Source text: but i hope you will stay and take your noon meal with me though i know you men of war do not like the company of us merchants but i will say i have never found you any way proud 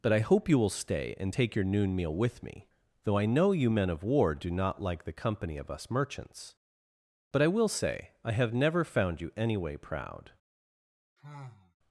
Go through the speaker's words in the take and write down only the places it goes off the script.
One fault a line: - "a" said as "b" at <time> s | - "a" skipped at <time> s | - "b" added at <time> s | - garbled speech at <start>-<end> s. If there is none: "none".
none